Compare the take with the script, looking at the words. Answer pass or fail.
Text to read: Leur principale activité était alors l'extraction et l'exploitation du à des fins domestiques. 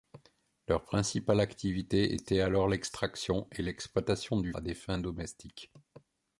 pass